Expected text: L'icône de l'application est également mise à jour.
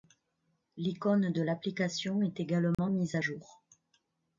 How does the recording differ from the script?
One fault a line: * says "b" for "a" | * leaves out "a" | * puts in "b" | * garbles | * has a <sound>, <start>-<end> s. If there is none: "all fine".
* has a dropout, 2.7-2.8 s